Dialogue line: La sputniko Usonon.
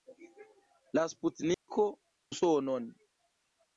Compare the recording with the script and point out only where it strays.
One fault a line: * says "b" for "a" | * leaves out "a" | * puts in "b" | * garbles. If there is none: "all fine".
all fine